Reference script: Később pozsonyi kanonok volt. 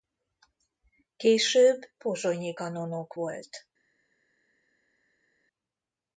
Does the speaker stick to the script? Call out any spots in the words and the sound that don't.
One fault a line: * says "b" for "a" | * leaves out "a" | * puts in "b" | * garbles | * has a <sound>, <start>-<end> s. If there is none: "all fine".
all fine